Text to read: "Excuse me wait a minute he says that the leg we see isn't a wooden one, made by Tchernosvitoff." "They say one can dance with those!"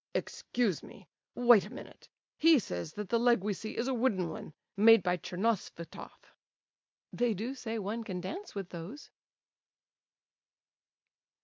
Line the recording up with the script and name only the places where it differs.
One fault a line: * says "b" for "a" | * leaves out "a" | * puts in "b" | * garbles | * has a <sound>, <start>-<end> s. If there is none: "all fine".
* says "is" for "isn't"
* puts in "do"